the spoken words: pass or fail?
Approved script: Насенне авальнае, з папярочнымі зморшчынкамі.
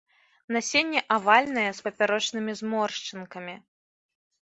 pass